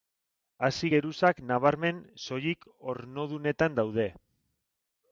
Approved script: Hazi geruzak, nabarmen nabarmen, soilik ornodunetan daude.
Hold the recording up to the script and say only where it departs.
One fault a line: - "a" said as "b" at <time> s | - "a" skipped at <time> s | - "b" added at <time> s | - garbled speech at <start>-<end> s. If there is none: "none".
- "nabarmen" skipped at 2.0 s